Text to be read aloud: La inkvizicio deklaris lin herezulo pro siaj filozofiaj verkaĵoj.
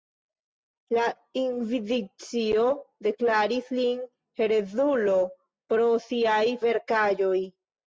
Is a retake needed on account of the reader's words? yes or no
yes